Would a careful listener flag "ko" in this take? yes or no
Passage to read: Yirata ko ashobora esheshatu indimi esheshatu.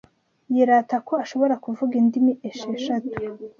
no